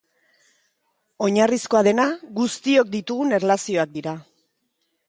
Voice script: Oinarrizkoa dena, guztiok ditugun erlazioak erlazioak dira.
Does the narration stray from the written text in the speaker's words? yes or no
yes